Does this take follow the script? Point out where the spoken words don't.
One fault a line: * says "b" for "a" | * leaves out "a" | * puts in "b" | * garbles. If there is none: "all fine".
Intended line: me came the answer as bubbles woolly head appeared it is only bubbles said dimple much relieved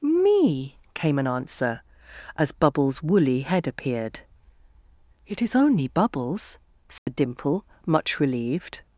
* says "an" for "the"